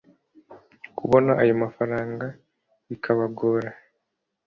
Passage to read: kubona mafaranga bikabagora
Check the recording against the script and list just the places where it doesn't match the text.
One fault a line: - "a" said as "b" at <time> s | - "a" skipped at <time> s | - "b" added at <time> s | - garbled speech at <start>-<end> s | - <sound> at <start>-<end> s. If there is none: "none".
- "ayo" added at 1.4 s